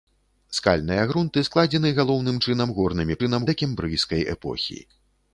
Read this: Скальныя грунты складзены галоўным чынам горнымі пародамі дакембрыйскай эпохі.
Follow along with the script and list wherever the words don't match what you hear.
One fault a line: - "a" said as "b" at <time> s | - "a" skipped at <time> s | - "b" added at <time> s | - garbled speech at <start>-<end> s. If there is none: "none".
- "пародамі" said as "чынам" at 3.2 s